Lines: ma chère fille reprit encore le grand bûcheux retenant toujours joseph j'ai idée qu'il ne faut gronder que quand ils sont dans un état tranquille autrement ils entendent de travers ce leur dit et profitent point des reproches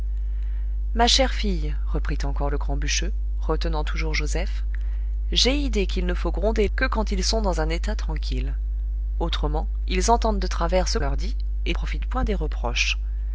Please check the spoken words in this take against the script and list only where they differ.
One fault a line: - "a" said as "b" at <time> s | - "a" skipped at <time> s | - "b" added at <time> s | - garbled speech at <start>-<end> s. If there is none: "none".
none